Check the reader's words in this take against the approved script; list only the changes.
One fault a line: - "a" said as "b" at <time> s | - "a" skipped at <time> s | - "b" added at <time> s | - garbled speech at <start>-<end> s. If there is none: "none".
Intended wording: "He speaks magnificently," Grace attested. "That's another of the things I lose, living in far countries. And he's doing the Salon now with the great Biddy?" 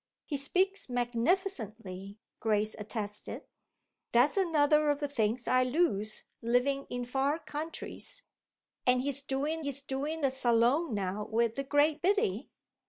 - "he's doing" added at 9.6 s